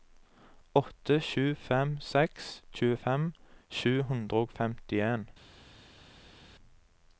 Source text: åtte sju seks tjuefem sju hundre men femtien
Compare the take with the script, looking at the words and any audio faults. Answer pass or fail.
fail